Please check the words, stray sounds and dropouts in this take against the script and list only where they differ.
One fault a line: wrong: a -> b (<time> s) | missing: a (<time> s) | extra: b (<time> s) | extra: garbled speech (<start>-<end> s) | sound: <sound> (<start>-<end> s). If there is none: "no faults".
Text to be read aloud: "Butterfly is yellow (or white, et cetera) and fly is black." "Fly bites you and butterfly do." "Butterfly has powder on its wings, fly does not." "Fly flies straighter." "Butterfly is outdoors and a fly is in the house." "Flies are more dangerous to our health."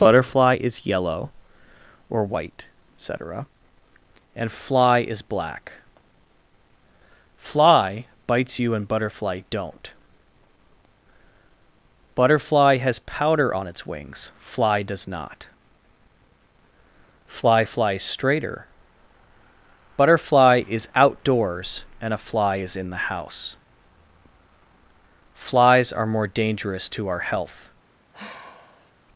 wrong: do -> don't (9.5 s)
sound: sigh (28.1-28.9 s)